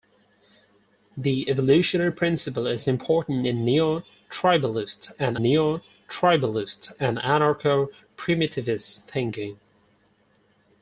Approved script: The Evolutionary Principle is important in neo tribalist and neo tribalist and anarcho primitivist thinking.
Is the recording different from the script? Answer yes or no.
no